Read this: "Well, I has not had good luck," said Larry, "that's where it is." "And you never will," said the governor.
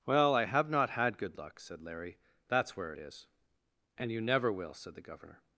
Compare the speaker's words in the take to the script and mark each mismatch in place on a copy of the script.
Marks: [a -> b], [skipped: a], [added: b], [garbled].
"Well, I [has -> have] not had good luck," said Larry, "that's where it is." "And you never will," said the governor.